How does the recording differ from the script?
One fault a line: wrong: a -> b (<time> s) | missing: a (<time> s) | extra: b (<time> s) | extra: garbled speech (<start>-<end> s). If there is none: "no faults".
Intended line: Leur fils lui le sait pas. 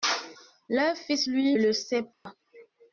no faults